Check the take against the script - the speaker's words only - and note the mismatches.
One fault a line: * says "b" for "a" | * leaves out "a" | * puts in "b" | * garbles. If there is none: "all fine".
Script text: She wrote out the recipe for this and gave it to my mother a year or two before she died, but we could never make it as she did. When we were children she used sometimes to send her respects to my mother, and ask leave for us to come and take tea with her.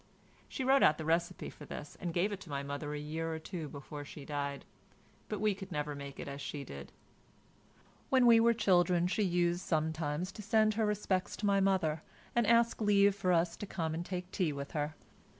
all fine